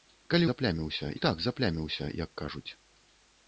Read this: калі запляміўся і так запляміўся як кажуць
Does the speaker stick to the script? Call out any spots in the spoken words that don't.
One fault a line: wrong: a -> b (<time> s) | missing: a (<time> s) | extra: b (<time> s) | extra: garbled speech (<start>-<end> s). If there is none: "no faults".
no faults